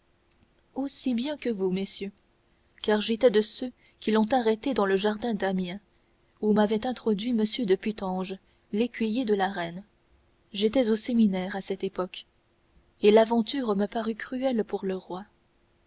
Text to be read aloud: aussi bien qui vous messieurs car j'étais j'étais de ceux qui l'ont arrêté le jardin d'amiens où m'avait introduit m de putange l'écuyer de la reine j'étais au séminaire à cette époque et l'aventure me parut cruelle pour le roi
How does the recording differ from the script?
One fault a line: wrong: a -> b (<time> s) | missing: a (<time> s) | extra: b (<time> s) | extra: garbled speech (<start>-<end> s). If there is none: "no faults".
wrong: qui -> que (1.4 s)
missing: j'étais (3.3 s)
extra: dans (4.7 s)